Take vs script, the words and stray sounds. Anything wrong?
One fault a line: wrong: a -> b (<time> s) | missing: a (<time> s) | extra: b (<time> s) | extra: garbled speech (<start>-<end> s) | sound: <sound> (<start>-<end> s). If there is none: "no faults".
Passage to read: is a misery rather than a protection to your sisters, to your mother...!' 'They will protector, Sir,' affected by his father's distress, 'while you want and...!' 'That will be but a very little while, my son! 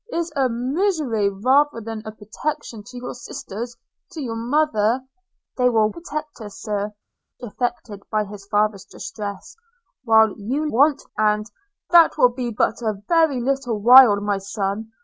no faults